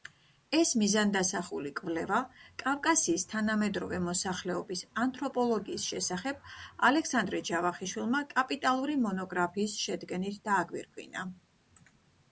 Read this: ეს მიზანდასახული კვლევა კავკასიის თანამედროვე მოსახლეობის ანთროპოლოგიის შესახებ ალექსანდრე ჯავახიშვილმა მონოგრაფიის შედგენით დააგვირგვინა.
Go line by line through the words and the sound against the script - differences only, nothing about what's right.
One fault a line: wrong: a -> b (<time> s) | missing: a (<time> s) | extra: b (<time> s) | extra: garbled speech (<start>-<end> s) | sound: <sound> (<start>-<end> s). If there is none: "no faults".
extra: კაპიტალური (8.3 s)